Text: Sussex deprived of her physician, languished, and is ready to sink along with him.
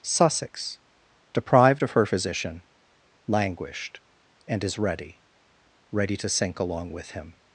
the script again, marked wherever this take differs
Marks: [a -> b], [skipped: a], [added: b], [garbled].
Sussex deprived of her physician, languished, and is ready [added: ready] to sink along with him.